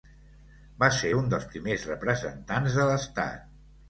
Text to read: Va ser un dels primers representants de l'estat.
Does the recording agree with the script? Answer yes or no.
yes